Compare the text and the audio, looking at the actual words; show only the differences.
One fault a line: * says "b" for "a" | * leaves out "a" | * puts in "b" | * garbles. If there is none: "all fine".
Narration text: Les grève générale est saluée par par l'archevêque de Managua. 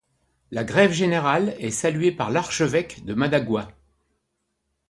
* says "La" for "Les"
* leaves out "par"